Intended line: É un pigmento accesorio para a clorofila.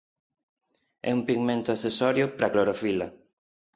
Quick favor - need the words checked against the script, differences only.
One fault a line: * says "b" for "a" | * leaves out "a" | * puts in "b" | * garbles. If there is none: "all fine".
all fine